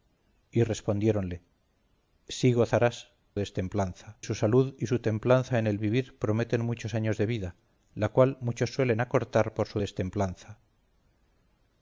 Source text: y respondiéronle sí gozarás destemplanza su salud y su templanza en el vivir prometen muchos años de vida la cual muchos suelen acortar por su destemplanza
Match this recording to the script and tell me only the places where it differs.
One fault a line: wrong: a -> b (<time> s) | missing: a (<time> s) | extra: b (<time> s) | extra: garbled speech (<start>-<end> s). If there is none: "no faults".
no faults